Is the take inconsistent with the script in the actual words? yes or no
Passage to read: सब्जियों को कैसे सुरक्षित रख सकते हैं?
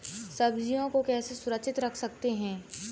no